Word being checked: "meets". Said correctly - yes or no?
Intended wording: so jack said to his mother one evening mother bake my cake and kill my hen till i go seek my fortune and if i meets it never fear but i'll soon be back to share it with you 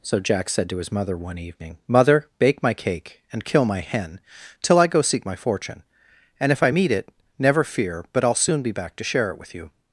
no